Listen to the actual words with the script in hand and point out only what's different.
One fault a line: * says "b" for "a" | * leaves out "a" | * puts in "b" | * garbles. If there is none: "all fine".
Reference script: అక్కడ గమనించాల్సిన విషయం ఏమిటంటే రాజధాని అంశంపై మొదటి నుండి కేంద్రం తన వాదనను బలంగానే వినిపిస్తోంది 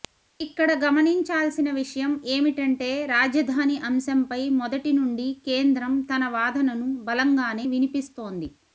* says "ఇక్కడ" for "అక్కడ"